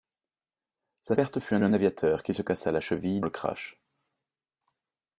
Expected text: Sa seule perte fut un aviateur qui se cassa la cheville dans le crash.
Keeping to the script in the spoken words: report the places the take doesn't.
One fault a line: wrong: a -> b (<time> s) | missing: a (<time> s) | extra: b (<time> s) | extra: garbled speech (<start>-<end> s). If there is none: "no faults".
missing: seule (1.1 s)
extra: un (1.6 s)
missing: dans (3.2 s)